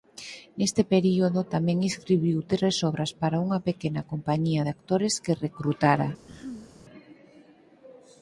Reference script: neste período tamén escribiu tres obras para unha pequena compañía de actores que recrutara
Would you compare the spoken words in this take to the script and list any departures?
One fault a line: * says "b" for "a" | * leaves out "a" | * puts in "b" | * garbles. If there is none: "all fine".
all fine